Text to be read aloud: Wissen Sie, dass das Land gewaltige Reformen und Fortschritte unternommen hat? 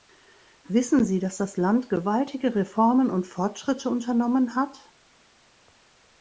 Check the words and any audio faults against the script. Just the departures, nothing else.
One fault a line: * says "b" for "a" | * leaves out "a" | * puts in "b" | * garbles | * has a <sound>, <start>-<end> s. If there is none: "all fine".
all fine